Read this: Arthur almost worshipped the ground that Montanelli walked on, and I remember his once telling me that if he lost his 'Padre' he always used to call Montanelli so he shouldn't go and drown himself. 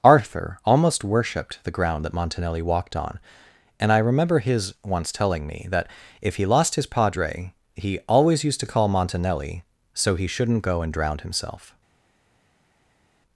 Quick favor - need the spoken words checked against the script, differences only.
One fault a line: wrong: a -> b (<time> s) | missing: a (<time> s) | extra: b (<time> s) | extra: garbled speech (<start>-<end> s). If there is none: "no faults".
no faults